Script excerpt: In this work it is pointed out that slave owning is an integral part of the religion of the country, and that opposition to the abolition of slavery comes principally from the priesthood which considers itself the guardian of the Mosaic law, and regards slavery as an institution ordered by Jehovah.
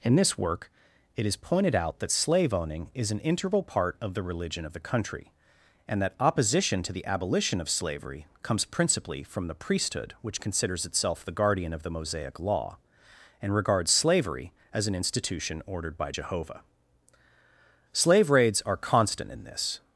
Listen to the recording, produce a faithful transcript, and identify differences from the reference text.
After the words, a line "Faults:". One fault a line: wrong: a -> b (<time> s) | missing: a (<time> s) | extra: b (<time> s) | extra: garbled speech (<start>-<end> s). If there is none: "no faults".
In this work it is pointed out that slave owning is an integral part of the religion of the country, and that opposition to the abolition of slavery comes principally from the priesthood which considers itself the guardian of the Mosaic law, and regards slavery as an institution ordered by Jehovah. Slave raids are constant in this
Faults:
extra: Slave raids are constant in this (17.9 s)